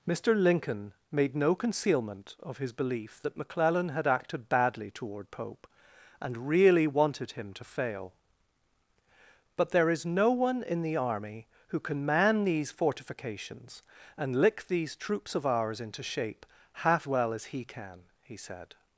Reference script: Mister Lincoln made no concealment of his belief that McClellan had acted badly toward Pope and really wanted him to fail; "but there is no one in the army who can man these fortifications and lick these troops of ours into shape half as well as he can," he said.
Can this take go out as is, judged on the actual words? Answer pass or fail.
fail